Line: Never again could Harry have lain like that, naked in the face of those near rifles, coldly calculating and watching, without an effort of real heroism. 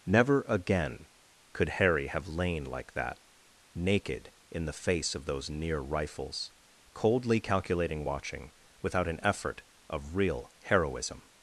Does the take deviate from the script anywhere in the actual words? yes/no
yes